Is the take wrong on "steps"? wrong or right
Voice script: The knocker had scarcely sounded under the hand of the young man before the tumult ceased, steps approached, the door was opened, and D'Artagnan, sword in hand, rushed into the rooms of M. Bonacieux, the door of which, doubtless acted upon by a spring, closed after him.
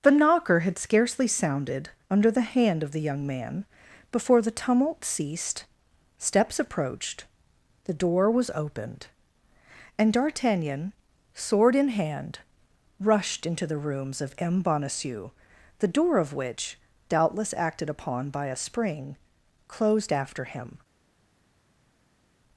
right